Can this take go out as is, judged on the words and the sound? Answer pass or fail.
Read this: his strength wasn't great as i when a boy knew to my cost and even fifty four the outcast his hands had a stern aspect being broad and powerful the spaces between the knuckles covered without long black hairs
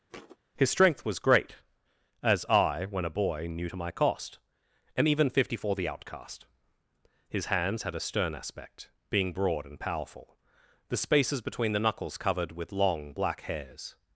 fail